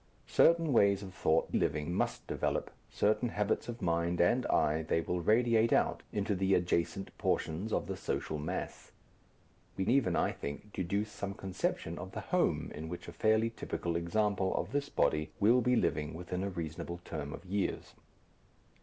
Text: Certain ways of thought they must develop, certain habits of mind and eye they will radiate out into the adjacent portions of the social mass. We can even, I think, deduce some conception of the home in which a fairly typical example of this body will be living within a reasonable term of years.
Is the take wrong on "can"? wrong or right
wrong